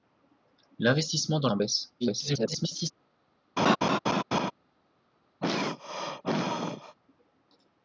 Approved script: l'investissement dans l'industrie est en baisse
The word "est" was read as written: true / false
false